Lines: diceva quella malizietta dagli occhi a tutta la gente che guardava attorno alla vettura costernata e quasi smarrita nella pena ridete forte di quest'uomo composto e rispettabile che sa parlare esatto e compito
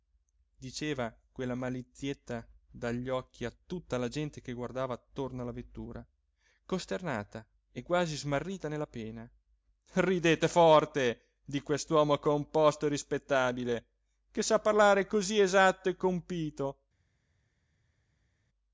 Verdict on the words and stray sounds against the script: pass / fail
fail